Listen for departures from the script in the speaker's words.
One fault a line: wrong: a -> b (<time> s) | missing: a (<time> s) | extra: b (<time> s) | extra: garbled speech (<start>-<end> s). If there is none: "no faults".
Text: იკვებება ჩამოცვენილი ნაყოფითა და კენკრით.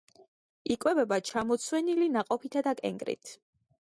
no faults